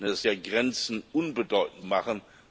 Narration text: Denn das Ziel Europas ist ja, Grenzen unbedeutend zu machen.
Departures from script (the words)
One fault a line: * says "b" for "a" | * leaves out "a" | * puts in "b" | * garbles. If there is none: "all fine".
* leaves out "Ziel Europas ist"
* leaves out "zu"